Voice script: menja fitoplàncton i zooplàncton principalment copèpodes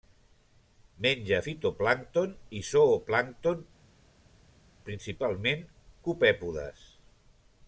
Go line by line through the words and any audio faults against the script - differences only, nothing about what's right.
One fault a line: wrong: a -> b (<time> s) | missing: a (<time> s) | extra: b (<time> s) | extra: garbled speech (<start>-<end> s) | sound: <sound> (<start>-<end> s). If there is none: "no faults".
no faults